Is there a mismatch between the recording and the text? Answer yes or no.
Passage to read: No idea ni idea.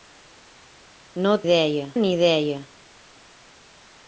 no